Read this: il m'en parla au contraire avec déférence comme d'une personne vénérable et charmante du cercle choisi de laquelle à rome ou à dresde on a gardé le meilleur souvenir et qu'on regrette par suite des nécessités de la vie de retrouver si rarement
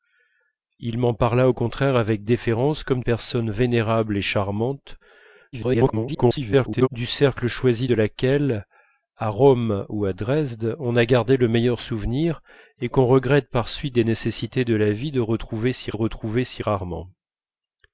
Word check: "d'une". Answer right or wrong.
wrong